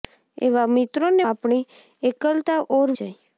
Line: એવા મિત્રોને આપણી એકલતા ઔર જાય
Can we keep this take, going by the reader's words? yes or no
yes